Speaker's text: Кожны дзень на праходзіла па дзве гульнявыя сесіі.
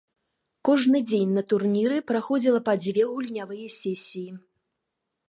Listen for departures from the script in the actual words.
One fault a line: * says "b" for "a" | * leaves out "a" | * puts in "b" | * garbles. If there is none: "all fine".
* puts in "турніры"